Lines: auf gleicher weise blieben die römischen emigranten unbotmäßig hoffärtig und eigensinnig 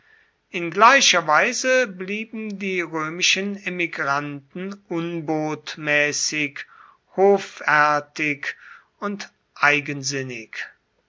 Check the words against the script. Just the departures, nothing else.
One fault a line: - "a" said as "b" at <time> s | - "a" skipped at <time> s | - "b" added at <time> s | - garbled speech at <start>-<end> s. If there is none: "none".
- "auf" said as "in" at 0.5 s